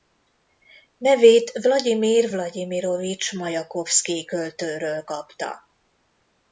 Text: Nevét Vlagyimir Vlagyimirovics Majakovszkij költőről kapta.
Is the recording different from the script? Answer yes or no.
no